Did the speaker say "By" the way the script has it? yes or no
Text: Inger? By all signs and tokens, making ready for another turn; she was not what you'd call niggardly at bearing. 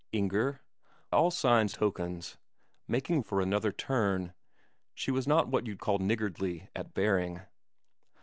no